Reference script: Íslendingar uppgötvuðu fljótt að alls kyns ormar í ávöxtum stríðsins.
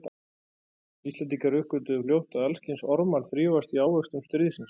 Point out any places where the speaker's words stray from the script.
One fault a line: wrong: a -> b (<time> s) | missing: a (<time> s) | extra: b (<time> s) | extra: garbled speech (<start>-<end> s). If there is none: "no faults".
extra: þrífast (3.3 s)